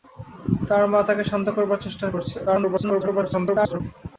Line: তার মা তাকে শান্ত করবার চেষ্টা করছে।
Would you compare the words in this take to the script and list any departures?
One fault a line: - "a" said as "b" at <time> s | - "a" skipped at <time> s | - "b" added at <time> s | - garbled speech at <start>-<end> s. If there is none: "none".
- garbled speech at 2.5-3.8 s